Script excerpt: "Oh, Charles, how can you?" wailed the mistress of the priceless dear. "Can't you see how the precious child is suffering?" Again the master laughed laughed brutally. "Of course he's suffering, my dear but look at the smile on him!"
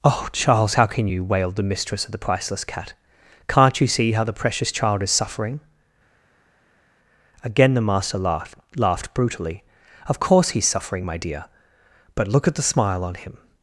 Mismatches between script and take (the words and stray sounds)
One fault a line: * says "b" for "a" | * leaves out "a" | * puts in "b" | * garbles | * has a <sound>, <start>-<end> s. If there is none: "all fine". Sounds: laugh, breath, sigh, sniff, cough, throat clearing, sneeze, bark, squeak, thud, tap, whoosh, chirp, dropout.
* says "cat" for "dear"